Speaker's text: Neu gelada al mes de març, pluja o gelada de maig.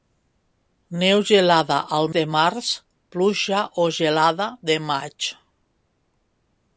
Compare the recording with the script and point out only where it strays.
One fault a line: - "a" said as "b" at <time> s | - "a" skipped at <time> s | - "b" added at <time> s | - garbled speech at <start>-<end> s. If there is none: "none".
- "mes" skipped at 2.1 s